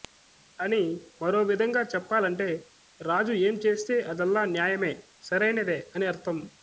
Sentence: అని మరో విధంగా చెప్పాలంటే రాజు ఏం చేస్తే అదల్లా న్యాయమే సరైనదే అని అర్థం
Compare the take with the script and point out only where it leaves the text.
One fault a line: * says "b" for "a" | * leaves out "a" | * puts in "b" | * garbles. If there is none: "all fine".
all fine